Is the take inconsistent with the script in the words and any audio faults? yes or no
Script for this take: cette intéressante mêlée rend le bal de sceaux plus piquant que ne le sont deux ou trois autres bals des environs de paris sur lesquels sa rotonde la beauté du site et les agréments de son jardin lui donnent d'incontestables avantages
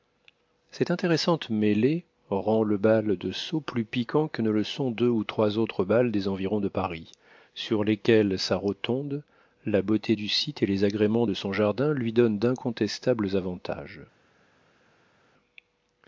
no